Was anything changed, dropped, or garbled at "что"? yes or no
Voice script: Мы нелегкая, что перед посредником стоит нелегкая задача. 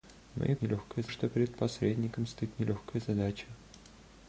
no